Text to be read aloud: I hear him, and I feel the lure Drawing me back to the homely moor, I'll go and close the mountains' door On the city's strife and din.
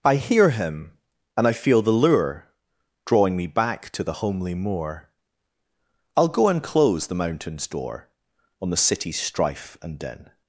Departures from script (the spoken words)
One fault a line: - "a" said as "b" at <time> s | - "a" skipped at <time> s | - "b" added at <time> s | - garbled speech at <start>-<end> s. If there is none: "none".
none